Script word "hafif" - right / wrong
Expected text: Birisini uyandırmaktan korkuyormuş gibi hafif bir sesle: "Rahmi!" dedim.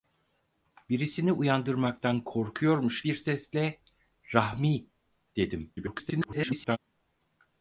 wrong